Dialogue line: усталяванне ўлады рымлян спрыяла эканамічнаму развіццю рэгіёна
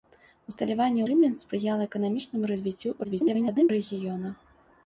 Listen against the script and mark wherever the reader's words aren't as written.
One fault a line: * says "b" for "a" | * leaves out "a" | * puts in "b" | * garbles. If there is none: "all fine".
* leaves out "ўлады"
* garbles